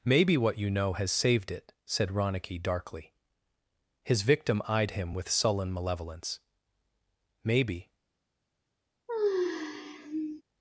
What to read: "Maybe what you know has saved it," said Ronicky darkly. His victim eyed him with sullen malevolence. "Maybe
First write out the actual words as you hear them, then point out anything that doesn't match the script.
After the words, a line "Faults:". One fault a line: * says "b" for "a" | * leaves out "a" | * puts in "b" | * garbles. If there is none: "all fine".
"Maybe what you know has saved it," said Ronicky darkly. His victim eyed him with sullen malevolence. "Maybe
Faults:
all fine